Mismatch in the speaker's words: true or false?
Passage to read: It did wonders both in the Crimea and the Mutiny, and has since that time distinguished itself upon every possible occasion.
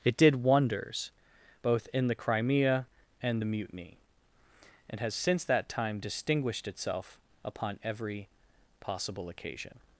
false